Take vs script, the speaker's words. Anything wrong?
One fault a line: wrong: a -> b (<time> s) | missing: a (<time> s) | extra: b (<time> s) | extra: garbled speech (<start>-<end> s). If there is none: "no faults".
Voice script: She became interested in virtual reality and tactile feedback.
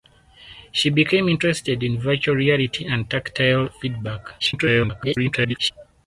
extra: garbled speech (4.4-5.7 s)